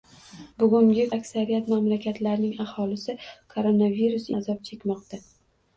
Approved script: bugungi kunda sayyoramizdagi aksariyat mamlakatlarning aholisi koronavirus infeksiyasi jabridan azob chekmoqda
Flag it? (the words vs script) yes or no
yes